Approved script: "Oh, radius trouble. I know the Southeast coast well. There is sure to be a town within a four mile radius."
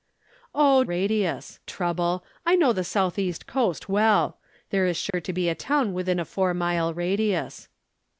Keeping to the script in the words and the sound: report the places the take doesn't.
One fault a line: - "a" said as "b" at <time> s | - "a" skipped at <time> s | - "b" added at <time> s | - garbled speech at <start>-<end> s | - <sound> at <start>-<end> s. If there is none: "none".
- dropout at 5.1-5.1 s